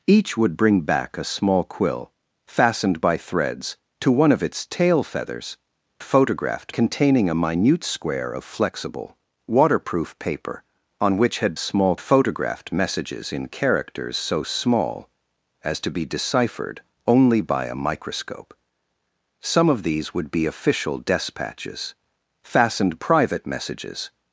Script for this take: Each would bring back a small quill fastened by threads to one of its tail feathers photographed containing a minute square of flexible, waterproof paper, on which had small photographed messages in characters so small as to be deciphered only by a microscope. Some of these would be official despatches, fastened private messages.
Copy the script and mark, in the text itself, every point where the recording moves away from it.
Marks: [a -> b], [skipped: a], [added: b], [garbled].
Each would bring back a small quill fastened by threads to one of its tail feathers photographed containing a minute square of flexible, waterproof paper, on which had small photographed messages in characters so small as to be deciphered only by a microscope. Some of these would be official despatches, fastened private messages.